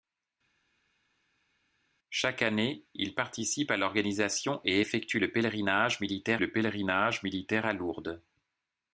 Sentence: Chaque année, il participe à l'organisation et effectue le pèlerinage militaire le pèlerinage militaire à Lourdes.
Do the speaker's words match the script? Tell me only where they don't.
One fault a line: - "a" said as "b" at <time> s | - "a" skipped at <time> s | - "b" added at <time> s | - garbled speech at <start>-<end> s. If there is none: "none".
none